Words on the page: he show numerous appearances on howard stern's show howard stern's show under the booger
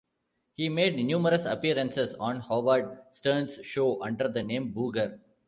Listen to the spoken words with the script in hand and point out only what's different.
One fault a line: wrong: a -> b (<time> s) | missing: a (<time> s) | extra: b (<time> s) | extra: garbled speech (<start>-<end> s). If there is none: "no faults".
wrong: show -> made (0.7 s)
missing: howard stern's show (4.0 s)
extra: name (4.4 s)